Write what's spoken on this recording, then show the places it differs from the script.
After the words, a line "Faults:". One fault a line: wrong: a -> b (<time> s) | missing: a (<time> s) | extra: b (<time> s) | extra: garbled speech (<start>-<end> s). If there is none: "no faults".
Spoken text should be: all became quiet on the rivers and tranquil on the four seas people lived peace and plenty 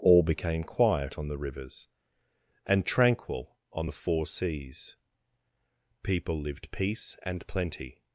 all became quiet on the rivers and tranquil on the four seas people lived peace and plenty
Faults:
no faults